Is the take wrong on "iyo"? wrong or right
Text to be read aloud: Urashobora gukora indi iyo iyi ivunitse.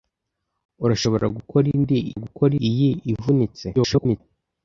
wrong